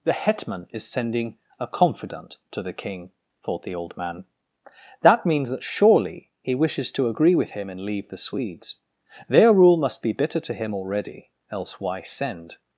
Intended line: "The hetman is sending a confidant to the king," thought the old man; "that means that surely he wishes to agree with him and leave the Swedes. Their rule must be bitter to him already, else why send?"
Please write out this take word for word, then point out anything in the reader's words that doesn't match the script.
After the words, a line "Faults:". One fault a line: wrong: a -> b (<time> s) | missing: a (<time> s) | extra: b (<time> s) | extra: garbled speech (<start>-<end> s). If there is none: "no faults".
"The hetman is sending a confidant to the king," thought the old man; "that means that surely he wishes to agree with him and leave the Swedes. Their rule must be bitter to him already, else why send?"
Faults:
no faults